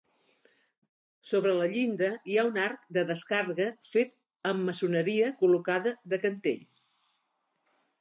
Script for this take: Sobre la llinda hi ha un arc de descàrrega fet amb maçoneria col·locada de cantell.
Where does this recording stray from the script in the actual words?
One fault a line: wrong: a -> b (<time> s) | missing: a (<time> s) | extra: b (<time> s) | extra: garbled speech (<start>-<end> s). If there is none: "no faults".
no faults